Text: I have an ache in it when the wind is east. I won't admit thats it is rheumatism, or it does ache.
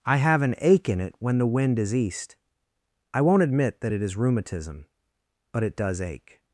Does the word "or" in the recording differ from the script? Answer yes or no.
yes